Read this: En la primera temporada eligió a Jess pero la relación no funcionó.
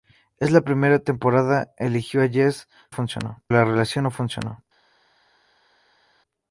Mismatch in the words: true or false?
true